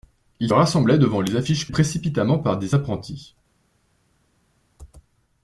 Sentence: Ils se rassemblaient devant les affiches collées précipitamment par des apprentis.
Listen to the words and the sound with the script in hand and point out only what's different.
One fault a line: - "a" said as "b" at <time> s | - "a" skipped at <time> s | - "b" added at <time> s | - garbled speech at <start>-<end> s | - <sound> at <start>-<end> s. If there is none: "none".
- "se" skipped at 0.5 s
- "collées" skipped at 1.7 s